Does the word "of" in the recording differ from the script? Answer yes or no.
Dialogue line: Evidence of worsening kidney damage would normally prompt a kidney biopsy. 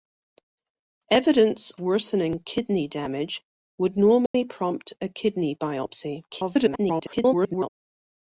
yes